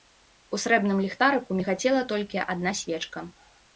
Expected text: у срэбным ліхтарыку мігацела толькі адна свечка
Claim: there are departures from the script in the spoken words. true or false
false